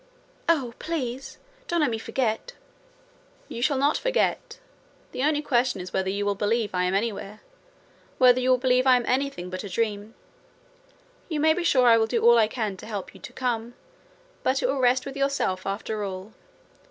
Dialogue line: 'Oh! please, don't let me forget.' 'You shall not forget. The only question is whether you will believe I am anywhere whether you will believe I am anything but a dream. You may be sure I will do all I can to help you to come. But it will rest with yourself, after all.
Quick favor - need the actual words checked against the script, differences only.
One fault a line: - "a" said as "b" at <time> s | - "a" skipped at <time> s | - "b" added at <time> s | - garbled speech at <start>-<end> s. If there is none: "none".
none